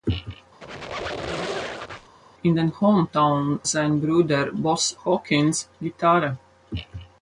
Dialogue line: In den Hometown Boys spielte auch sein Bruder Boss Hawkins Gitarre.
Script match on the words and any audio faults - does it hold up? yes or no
no